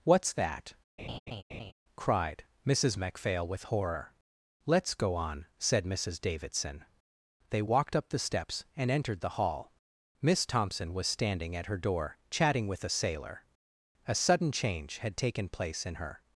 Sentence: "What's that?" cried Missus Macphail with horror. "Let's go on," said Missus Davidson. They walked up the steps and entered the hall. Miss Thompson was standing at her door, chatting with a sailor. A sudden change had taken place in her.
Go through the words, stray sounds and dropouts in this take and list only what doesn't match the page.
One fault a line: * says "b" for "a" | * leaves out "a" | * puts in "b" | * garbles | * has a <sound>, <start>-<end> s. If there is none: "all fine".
* has a laugh, 1.0-1.7 s